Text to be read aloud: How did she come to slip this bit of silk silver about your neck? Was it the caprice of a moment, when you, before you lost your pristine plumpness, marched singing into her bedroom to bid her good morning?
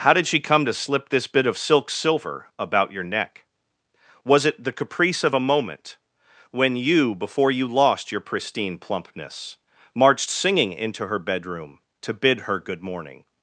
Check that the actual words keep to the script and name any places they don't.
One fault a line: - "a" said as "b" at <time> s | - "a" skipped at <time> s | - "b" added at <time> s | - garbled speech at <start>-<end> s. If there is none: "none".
none